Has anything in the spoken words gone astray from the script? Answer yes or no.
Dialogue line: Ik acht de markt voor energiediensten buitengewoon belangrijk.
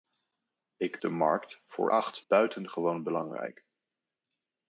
yes